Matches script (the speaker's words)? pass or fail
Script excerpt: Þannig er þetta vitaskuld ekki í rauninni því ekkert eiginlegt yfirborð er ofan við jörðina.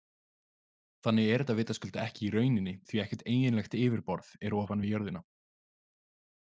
pass